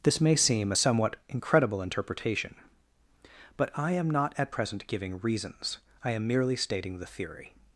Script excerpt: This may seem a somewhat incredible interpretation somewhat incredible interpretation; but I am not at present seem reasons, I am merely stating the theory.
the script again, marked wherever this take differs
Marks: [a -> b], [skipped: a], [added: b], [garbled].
This may seem a somewhat incredible interpretation [skipped: somewhat incredible interpretation;] but I am not at present [seem -> giving] reasons, I am merely stating the theory.